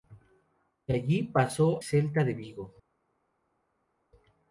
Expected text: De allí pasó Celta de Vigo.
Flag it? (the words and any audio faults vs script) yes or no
no